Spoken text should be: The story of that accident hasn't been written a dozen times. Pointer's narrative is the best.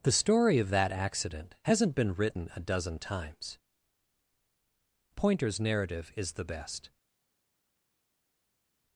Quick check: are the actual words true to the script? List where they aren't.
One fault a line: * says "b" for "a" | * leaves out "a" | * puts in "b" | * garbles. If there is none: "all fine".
all fine